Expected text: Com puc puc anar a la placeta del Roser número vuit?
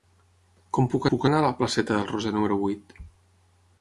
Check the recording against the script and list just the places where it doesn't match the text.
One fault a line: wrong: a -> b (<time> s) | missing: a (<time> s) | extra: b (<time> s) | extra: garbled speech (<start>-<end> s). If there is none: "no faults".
no faults